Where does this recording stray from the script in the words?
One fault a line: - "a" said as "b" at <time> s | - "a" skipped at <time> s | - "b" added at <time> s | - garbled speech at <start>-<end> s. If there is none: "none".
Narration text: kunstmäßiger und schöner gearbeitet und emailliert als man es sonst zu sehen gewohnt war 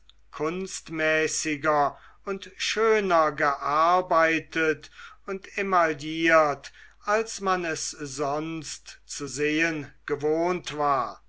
none